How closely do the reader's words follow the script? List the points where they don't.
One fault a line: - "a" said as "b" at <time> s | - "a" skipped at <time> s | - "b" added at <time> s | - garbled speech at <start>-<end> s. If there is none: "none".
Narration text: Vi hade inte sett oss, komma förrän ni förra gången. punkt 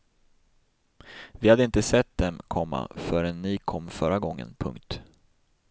- "oss" said as "dem" at 2.2 s
- "kom" added at 3.6 s